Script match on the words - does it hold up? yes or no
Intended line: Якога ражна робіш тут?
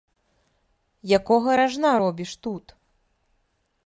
yes